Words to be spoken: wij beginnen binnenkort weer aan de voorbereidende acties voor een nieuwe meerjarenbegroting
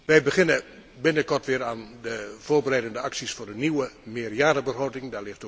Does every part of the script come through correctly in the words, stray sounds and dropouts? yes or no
yes